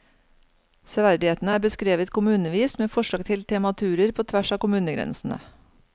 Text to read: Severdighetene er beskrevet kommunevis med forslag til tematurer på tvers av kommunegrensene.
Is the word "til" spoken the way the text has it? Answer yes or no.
yes